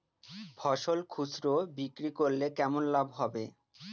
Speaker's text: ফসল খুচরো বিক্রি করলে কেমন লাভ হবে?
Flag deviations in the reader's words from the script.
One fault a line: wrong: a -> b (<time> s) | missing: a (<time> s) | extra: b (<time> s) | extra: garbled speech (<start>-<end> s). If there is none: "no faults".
no faults